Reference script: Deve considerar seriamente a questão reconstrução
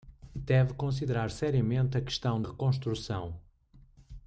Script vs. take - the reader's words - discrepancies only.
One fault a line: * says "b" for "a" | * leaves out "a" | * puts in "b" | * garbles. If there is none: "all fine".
all fine